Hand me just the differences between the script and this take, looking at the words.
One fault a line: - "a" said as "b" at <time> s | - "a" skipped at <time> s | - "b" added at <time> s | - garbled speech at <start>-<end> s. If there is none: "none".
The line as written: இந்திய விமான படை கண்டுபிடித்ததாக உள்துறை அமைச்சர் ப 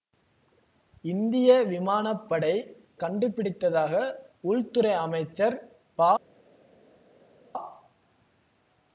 none